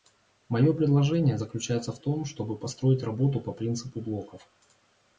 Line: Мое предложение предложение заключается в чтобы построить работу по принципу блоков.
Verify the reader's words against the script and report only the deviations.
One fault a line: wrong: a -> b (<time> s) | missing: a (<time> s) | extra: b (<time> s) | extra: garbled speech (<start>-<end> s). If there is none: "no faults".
missing: предложение (1.4 s)
extra: том (2.0 s)